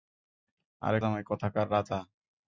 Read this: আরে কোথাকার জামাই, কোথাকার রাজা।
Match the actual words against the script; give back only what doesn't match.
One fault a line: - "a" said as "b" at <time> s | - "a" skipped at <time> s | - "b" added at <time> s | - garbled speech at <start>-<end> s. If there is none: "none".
- "কোথাকার" skipped at 1.0 s